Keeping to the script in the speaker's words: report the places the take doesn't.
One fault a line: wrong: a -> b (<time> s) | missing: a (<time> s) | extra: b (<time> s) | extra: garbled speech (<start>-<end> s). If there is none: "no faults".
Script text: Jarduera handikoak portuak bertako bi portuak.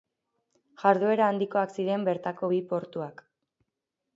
wrong: portuak -> ziren (1.8 s)